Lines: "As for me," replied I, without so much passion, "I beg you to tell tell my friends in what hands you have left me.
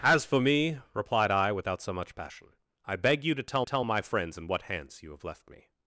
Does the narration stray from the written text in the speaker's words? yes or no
no